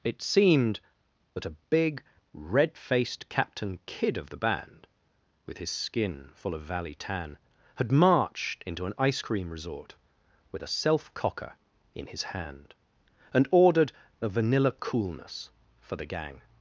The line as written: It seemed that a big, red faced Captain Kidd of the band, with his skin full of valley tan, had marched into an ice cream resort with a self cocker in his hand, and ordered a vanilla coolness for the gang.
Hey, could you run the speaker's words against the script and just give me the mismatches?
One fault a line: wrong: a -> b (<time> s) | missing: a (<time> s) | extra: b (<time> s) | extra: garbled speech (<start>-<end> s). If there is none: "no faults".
no faults